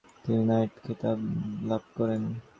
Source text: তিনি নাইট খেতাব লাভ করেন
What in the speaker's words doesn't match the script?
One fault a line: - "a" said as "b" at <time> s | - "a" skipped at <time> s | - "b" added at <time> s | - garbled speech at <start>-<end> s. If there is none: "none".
none